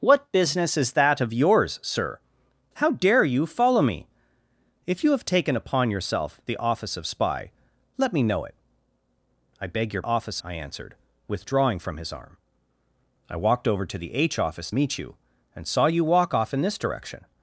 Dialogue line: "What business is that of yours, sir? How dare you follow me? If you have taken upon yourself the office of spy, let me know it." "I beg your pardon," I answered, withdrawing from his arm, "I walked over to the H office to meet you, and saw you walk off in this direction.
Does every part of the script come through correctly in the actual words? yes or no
no